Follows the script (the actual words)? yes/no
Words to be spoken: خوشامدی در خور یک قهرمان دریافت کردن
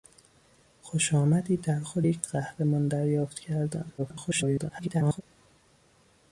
no